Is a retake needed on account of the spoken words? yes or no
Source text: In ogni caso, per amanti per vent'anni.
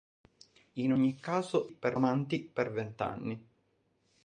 no